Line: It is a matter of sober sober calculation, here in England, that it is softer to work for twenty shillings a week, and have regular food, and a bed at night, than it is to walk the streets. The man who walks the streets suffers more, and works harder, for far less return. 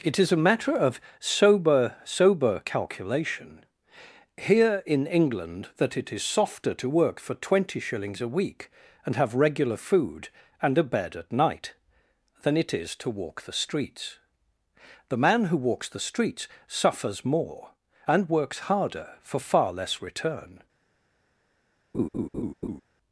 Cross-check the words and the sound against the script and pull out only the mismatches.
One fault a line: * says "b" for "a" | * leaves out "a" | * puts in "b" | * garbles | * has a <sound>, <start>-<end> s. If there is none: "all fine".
* has a laugh, 21.9-22.8 s